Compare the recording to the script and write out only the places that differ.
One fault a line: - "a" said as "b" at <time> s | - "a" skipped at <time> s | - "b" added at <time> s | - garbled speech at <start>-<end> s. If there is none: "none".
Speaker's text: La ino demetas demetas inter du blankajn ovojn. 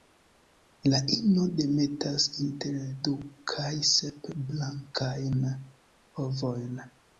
- "demetas" skipped at 2.2 s
- "kaj sep" added at 3.5 s